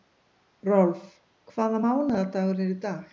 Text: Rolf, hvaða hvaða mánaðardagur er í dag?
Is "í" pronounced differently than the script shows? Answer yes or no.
no